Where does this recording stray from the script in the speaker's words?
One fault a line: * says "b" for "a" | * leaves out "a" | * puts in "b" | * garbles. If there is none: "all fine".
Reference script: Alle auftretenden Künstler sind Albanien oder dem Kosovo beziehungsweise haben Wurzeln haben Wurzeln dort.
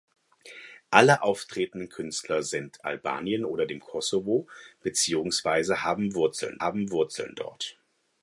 all fine